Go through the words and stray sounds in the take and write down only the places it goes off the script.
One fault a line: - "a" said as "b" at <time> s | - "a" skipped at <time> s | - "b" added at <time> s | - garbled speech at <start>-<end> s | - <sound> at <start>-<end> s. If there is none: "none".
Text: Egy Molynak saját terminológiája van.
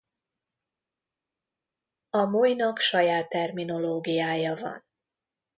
- "Egy" said as "A" at 2.1 s